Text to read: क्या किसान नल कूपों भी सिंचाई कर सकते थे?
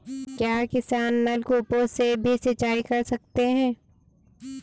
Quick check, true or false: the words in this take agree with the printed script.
false